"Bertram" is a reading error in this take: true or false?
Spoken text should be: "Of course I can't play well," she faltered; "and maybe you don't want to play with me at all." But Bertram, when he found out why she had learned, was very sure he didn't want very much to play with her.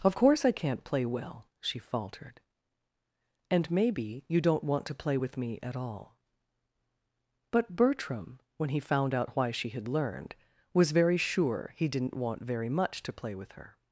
false